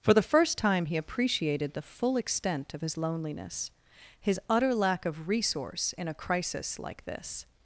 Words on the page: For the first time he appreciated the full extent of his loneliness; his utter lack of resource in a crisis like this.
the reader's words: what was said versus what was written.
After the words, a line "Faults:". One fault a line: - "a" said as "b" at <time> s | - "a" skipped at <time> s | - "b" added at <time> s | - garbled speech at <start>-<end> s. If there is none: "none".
For the first time he appreciated the full extent of his loneliness; his utter lack of resource in a crisis like this.
Faults:
none